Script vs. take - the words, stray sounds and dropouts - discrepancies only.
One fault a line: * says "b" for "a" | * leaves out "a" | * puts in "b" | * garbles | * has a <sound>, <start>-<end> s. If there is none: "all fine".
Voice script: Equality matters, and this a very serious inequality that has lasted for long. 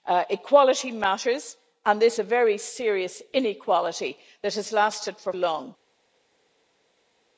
all fine